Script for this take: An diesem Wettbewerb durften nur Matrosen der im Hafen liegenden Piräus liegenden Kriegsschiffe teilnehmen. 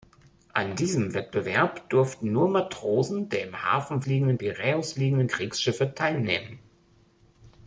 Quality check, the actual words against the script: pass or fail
pass